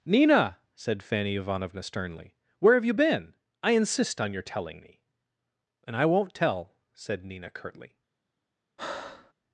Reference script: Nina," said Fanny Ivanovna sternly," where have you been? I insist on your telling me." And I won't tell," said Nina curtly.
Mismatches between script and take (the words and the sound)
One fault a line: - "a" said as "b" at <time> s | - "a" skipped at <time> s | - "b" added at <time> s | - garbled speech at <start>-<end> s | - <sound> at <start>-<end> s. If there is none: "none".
- breath at 8.8-9.3 s